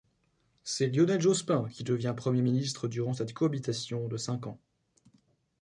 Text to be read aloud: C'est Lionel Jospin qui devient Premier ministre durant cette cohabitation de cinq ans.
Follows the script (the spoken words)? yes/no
yes